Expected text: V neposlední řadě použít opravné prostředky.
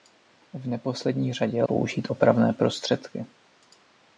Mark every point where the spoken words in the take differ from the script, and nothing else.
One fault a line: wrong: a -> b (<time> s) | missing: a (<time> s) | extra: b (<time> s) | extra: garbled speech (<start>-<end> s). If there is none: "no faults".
no faults